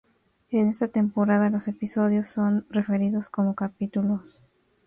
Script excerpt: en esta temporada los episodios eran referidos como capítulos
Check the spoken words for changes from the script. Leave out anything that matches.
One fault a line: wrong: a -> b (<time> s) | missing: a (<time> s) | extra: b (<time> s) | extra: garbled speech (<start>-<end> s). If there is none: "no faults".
wrong: eran -> son (2.3 s)